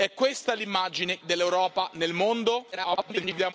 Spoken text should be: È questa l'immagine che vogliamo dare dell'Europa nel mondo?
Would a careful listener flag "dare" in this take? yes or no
yes